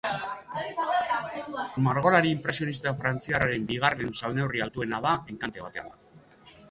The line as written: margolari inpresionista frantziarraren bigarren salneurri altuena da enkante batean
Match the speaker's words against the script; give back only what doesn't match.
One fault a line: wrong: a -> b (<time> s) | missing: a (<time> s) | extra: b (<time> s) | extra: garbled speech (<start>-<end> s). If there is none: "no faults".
no faults